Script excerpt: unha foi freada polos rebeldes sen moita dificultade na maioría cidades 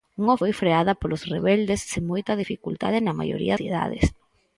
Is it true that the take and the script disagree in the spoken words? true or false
false